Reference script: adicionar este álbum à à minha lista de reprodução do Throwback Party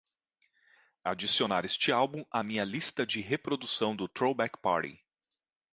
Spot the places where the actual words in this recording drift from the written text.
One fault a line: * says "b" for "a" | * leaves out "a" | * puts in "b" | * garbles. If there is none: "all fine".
* leaves out "à"